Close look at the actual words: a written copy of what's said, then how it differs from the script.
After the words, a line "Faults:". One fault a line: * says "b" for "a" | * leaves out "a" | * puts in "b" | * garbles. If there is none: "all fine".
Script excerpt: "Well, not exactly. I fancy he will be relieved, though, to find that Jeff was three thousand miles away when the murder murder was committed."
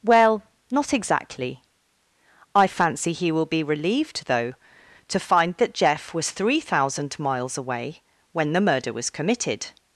"Well, not exactly. I fancy he will be relieved, though, to find that Jeff was three thousand miles away when the murder was committed."
Faults:
* leaves out "murder"